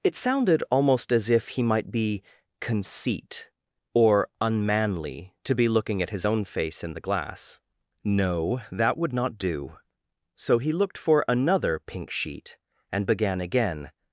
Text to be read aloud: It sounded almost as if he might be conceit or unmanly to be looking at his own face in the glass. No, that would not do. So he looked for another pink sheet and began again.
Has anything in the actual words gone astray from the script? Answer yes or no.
no